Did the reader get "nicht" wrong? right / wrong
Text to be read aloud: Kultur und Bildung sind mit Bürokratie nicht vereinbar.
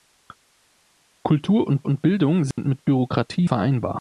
wrong